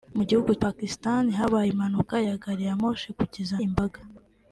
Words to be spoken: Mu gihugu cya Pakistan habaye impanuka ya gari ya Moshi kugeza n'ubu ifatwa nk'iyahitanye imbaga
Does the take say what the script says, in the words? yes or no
no